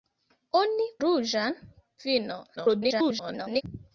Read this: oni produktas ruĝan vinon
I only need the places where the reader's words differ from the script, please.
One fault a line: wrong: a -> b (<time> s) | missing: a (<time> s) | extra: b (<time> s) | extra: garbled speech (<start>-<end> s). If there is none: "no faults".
missing: produktas (0.9 s)
extra: garbled speech (2.6-3.6 s)